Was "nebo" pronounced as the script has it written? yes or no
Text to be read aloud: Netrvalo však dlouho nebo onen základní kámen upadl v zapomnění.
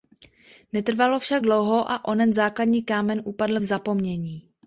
no